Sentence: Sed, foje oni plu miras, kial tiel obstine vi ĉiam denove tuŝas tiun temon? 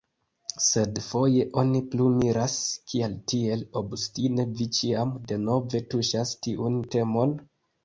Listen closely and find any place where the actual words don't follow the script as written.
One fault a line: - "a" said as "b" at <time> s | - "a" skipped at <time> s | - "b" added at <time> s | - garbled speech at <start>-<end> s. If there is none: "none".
none